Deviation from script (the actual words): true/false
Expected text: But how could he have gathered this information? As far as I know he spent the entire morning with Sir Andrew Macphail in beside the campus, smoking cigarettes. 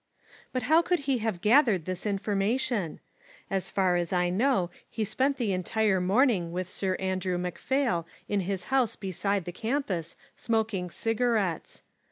true